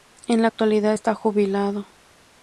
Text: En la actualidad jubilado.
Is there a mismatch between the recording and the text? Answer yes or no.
yes